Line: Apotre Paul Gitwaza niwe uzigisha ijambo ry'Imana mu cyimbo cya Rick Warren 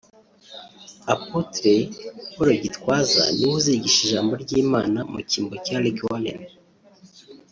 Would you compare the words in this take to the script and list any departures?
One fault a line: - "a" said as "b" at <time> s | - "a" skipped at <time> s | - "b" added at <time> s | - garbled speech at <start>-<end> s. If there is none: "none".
none